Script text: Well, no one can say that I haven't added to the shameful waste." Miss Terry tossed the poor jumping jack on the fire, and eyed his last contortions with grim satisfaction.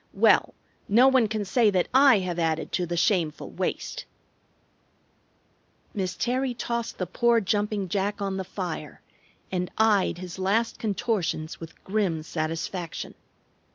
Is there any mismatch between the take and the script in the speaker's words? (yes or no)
yes